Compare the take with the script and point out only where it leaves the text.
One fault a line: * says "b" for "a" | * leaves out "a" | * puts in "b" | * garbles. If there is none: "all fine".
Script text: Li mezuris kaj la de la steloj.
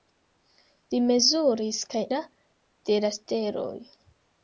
all fine